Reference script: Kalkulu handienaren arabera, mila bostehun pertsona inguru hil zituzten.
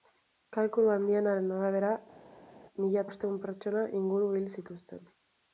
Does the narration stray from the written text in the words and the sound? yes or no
no